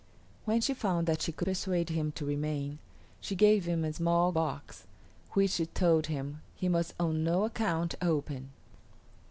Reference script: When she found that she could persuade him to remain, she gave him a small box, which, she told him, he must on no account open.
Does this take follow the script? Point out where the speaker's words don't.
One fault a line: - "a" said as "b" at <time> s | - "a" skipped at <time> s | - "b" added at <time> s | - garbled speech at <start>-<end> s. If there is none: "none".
none